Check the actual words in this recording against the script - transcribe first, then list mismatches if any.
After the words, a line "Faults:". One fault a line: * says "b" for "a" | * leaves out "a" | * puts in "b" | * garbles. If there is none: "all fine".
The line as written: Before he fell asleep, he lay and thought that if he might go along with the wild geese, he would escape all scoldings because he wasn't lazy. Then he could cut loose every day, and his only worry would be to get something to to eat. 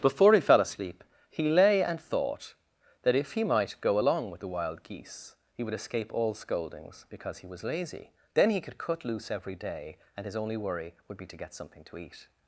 Before he fell asleep, he lay and thought that if he might go along with the wild geese, he would escape all scoldings because he was lazy. Then he could cut loose every day, and his only worry would be to get something to eat.
Faults:
* says "was" for "wasn't"
* leaves out "to"